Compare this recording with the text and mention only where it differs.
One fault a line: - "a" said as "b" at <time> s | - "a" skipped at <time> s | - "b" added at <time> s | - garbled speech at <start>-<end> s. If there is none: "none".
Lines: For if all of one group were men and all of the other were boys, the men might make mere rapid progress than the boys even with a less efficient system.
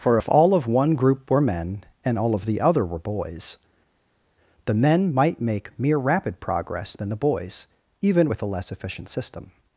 none